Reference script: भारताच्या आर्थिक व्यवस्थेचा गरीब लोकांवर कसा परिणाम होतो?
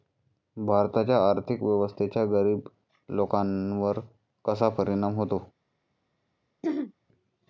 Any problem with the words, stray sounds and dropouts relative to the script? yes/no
yes